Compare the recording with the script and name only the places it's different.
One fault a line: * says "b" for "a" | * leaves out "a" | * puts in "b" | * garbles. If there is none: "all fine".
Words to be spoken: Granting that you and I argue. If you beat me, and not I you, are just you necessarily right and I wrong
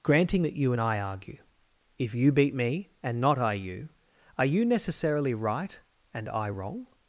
* leaves out "just"